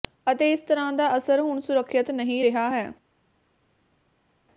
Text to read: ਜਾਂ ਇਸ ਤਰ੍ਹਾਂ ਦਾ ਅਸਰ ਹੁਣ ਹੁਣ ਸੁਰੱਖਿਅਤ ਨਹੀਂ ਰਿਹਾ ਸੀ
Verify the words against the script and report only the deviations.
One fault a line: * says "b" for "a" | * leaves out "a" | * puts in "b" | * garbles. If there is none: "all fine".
* says "ਅਤੇ" for "ਜਾਂ"
* leaves out "ਹੁਣ"
* says "ਹੈ" for "ਸੀ"